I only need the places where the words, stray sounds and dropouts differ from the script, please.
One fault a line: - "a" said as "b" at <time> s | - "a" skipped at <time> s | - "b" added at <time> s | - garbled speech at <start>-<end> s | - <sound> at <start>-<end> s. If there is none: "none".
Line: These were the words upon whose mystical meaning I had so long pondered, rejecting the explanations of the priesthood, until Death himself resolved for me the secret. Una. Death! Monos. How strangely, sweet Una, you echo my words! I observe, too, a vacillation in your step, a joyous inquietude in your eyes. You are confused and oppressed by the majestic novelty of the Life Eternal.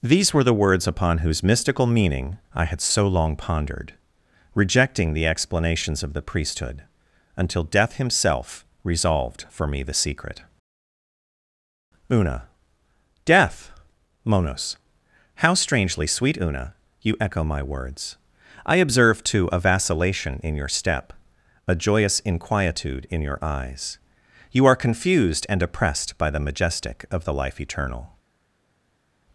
- "novelty" skipped at 27.0 s